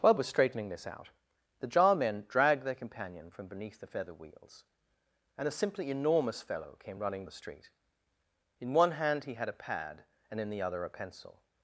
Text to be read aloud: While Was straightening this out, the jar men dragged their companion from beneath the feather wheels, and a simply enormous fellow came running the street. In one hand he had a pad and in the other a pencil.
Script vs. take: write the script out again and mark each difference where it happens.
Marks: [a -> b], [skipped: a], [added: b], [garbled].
While Was straightening this out, the jar men dragged their companion from beneath the feather wheels, and a simply enormous fellow came running the street. In one hand he had a pad and in the other a pencil.